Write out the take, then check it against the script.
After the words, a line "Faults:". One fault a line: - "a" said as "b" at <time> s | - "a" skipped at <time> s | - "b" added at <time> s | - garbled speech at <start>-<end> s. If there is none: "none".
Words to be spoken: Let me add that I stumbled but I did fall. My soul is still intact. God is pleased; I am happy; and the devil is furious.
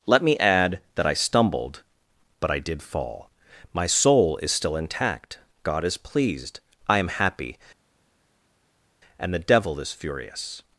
Let me add that I stumbled but I did fall. My soul is still intact. God is pleased; I am happy; and the devil is furious.
Faults:
none